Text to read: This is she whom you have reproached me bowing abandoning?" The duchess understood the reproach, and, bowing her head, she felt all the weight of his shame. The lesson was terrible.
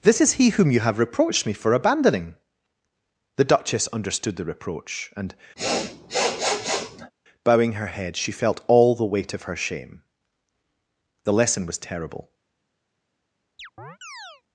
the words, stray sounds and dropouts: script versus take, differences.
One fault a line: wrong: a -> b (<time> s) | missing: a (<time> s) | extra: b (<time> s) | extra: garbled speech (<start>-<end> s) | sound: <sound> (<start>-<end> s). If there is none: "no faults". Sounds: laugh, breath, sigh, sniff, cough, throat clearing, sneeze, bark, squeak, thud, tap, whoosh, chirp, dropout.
wrong: she -> he (0.3 s)
wrong: bowing -> for (1.5 s)
sound: sniff (5.6-7.1 s)
wrong: his -> her (9.4 s)
sound: chirp (13.6-14.4 s)